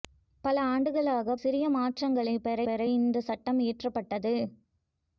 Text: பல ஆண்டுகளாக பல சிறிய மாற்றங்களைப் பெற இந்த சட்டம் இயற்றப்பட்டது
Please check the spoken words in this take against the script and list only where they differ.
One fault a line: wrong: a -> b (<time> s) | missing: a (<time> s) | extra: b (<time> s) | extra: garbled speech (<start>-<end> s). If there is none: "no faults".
missing: பல (1.4 s)
extra: பெற (2.6 s)